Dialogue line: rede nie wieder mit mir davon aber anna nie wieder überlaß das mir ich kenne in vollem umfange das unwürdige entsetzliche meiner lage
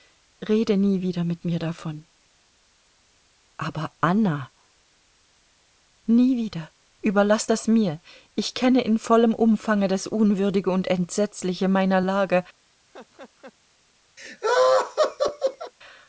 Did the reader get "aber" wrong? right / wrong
right